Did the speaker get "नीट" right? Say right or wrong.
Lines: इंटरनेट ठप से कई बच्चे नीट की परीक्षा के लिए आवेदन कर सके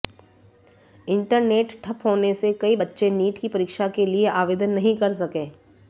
right